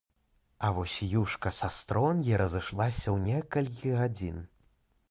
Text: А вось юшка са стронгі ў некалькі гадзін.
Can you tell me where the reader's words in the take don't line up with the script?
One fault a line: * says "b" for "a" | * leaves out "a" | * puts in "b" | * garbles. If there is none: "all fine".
* puts in "разышлася"